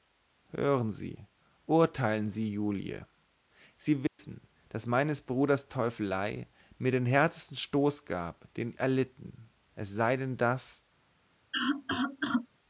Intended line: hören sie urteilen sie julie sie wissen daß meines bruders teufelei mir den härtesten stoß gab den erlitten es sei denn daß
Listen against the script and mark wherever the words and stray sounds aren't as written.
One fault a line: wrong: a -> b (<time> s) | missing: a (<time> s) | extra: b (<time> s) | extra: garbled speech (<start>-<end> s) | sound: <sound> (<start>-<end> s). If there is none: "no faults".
sound: dropout (4.1-4.2 s)
sound: cough (11.5-12.5 s)